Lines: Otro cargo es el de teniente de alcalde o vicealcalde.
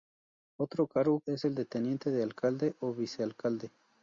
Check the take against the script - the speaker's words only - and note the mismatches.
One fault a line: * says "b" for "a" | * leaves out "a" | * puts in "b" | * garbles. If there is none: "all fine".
all fine